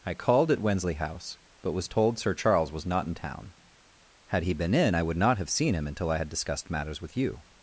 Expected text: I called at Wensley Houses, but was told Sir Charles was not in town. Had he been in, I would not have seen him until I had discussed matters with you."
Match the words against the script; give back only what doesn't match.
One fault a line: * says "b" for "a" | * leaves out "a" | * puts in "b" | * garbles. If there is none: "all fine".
* says "House" for "Houses"